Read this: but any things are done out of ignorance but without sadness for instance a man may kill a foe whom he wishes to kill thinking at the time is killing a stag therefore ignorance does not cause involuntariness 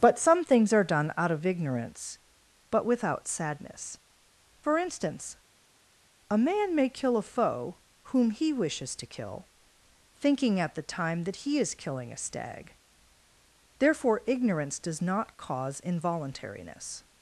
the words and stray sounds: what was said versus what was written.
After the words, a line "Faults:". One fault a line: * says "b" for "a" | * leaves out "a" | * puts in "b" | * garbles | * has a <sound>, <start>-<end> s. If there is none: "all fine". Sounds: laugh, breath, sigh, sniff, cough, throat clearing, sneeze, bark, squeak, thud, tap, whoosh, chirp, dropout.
but some things are done out of ignorance but without sadness for instance a man may kill a foe whom he wishes to kill thinking at the time that he is killing a stag therefore ignorance does not cause involuntariness
Faults:
* says "some" for "any"
* puts in "that he"